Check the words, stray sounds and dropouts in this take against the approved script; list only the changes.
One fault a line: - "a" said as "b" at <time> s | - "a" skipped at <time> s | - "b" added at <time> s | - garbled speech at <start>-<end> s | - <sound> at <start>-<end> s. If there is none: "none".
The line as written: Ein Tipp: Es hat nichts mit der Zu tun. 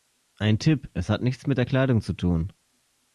- "Kleidung" added at 1.6 s